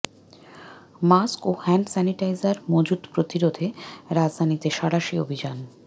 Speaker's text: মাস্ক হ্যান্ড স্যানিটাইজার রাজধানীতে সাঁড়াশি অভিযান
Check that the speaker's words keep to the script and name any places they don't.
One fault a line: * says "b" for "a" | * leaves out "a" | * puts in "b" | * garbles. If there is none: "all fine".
* puts in "ও"
* puts in "মজুত প্রতিরোধে"